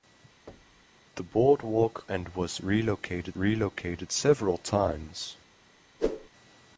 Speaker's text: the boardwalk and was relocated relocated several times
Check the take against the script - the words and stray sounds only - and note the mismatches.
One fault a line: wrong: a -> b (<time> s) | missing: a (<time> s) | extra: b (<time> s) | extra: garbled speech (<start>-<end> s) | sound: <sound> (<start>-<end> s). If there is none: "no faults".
sound: thud (0.5-1.0 s)
sound: whoosh (6.0-6.3 s)